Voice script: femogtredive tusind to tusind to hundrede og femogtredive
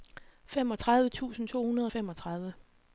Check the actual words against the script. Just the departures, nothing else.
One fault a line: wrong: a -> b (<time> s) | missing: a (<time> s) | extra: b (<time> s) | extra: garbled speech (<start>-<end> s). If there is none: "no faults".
missing: tusind to (1.6 s)